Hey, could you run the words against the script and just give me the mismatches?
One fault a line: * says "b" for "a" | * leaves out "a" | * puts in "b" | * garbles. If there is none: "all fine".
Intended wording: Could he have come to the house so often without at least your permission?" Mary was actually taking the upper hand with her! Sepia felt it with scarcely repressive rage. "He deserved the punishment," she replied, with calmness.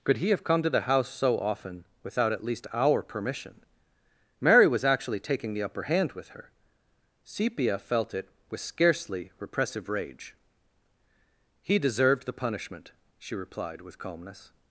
* says "our" for "your"